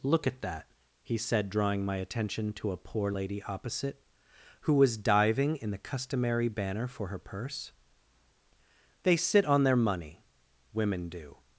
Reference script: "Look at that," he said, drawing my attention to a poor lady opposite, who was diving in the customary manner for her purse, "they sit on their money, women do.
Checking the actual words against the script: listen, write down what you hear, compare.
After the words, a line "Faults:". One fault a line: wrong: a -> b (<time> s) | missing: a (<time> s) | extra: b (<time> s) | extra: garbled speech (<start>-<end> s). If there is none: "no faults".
"Look at that," he said, drawing my attention to a poor lady opposite, who was diving in the customary banner for her purse, "they sit on their money, women do.
Faults:
wrong: manner -> banner (6.5 s)